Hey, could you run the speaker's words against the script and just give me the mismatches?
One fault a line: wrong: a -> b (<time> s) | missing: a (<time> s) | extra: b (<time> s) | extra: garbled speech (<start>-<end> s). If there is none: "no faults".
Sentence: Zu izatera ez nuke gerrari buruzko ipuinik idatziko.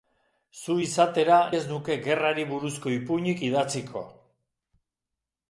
no faults